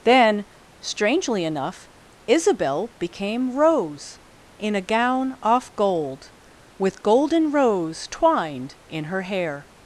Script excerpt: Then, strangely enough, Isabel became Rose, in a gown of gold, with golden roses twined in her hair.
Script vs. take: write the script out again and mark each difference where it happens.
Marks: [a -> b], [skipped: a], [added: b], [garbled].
Then, strangely enough, Isabel became Rose, in a gown [of -> off] gold, with golden [roses -> rose] twined in her hair.